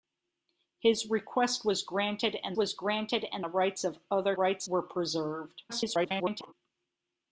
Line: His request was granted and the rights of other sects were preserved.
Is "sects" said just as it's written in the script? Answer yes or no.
no